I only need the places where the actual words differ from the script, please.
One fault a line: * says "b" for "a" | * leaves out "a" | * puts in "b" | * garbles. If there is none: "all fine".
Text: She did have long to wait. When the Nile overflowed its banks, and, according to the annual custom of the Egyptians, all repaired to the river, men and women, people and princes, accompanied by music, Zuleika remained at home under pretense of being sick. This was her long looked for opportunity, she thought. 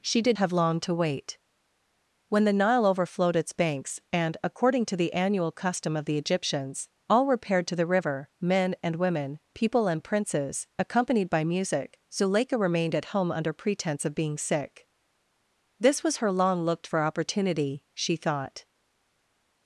all fine